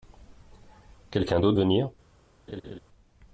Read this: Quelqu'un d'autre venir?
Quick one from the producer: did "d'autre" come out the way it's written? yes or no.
yes